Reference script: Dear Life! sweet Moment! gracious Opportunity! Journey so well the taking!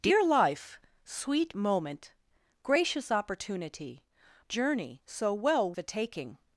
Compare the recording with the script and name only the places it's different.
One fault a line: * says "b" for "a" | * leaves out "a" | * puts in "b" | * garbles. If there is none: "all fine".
all fine